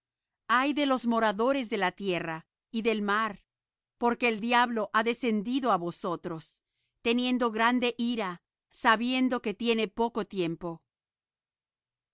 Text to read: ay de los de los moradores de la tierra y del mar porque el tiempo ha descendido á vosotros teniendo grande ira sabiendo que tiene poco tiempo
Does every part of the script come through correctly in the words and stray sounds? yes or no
no